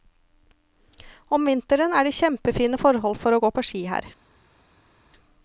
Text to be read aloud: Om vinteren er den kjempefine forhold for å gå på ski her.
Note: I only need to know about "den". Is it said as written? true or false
false